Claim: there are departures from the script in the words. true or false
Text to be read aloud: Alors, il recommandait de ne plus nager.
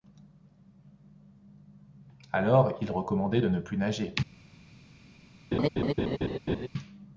false